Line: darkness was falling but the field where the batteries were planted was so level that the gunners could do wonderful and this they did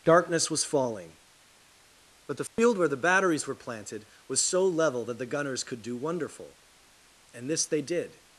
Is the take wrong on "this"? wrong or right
right